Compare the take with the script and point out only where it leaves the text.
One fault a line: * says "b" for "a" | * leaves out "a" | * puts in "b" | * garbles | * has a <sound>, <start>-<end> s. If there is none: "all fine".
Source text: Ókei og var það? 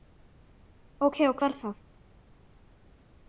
all fine